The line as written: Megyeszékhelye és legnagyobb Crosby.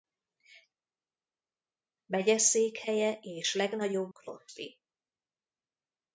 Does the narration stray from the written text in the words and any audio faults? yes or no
no